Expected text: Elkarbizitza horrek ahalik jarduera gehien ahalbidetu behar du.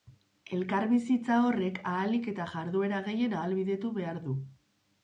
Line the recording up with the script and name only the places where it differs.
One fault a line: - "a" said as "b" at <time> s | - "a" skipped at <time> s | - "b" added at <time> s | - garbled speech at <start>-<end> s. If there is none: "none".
- "eta" added at 2.4 s